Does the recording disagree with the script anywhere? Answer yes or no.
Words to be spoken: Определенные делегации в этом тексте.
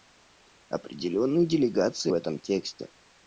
no